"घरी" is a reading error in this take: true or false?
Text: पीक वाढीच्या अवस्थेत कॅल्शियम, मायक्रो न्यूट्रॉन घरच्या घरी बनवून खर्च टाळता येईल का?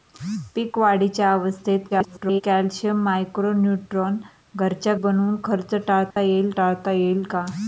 true